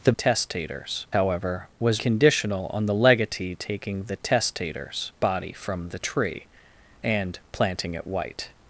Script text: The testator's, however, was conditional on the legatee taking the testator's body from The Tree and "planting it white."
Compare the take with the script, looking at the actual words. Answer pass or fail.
pass